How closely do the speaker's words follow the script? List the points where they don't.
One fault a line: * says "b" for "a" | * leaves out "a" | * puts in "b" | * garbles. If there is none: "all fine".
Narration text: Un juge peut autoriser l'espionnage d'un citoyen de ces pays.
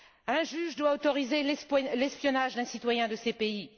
* says "doit" for "peut"